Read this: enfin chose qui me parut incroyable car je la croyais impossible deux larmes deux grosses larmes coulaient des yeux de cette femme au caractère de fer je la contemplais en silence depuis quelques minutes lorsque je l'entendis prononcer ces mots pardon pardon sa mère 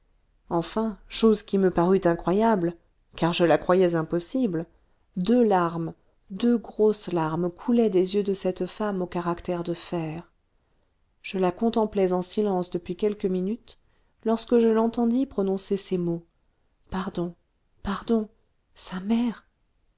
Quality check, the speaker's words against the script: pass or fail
pass